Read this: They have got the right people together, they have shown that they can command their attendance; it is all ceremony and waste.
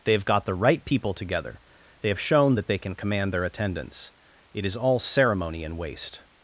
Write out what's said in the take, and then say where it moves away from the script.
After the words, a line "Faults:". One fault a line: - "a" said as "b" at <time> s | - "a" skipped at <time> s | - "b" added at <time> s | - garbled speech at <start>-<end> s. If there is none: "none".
They have got the right people together, they have shown that they can command their attendance; it is all ceremony and waste.
Faults:
none